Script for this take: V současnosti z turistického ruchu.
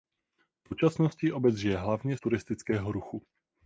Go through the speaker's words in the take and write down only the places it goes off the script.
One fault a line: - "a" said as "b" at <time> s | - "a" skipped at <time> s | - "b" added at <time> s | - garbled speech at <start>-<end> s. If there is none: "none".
- "obec žije hlavně" added at 1.3 s